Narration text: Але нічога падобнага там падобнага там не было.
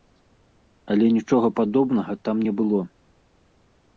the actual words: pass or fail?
fail